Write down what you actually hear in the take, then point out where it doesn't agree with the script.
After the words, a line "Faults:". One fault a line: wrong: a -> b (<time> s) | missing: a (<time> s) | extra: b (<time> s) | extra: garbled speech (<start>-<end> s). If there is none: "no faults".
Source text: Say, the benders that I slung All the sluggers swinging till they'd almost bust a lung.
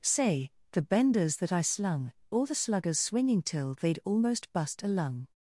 Say, the benders that I slung All the sluggers swinging till they'd almost bust a lung.
Faults:
no faults